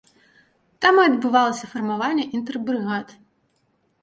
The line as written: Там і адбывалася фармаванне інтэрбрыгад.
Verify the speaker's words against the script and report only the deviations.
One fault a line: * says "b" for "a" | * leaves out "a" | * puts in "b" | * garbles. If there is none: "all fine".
all fine